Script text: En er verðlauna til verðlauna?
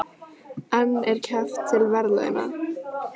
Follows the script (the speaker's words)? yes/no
no